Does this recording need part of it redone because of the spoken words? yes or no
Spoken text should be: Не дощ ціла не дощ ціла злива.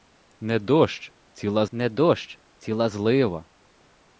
no